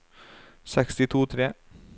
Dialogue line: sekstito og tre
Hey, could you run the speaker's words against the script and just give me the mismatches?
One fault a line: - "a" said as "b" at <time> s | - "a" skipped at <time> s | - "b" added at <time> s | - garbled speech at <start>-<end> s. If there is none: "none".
none